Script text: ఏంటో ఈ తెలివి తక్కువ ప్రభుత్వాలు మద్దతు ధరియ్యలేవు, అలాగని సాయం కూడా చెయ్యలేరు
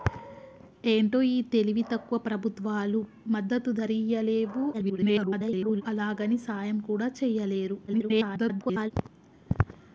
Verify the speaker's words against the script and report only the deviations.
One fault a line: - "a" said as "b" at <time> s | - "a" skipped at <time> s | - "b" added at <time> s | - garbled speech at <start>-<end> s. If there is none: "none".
- garbled speech at 4.7-5.8 s
- garbled speech at 7.9-8.9 s